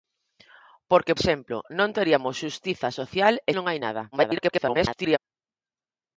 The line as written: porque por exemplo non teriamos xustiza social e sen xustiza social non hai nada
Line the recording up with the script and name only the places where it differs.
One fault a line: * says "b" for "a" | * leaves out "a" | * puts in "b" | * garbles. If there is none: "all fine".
* leaves out "por"
* leaves out "sen xustiza social"
* garbles